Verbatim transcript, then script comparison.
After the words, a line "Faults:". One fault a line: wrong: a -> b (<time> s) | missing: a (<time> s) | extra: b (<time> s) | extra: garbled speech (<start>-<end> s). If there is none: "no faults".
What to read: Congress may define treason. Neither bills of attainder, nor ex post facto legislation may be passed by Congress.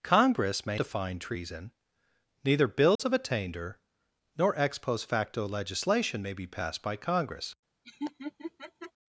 Congress may define treason. Neither bills of attainder, nor ex post facto legislation may be passed by Congress.
Faults:
no faults